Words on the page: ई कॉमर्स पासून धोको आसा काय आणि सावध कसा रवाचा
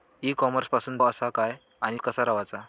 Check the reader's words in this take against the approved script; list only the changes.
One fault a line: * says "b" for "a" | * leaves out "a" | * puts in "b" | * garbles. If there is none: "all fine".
* leaves out "धोको"
* leaves out "सावध"